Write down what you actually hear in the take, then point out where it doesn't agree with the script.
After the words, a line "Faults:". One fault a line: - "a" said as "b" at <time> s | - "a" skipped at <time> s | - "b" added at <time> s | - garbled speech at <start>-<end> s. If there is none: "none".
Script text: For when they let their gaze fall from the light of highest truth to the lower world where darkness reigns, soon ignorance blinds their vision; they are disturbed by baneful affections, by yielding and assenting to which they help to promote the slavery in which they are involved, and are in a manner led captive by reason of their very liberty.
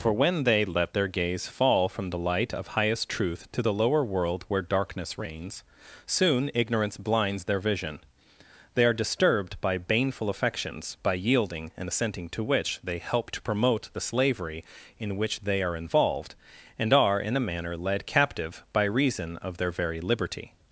For when they let their gaze fall from the light of highest truth to the lower world where darkness reigns, soon ignorance blinds their vision; they are disturbed by baneful affections, by yielding and assenting to which they help to promote the slavery in which they are involved, and are in a manner led captive by reason of their very liberty.
Faults:
none